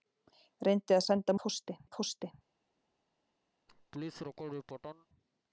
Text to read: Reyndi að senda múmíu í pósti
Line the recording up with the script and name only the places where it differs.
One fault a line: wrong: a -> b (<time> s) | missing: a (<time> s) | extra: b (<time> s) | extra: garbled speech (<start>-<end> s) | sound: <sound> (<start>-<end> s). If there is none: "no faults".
wrong: múmíu -> pósti (1.4 s)
sound: laugh (3.7-5.1 s)